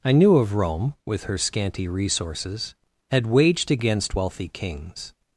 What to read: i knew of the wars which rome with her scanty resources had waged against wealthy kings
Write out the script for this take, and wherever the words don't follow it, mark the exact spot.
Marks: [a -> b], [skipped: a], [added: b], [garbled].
i knew of [skipped: the wars which] rome with her scanty resources had waged against wealthy kings